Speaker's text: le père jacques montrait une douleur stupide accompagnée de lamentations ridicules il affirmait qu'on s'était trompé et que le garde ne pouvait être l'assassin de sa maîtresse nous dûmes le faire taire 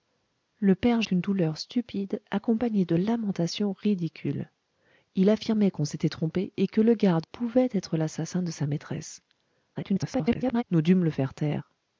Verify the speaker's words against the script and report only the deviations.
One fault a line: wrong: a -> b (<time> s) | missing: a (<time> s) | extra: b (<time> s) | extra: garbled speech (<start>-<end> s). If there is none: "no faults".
missing: jacques montrait (1.0 s)
missing: ne (7.3 s)
extra: garbled speech (9.7-10.6 s)